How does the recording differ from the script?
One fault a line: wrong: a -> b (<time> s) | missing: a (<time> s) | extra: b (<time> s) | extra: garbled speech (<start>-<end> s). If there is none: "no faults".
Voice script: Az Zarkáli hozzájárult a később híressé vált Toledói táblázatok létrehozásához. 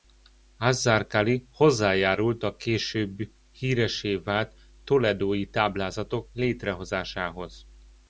no faults